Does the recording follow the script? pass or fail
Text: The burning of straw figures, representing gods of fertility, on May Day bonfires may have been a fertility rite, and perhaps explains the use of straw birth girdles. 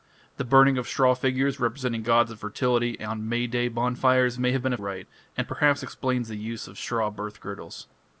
fail